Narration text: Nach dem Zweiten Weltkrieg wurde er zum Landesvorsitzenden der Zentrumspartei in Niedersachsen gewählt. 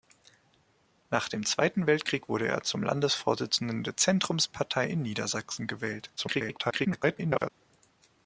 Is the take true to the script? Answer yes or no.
no